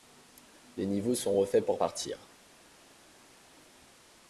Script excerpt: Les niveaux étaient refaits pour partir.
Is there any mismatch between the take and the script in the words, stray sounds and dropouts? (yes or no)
yes